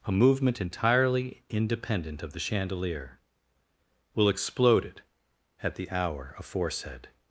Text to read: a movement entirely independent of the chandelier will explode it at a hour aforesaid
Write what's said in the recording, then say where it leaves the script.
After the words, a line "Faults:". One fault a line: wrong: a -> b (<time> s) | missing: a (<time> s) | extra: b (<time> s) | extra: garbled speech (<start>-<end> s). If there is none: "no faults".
a movement entirely independent of the chandelier will explode it at the hour aforesaid
Faults:
wrong: a -> the (5.8 s)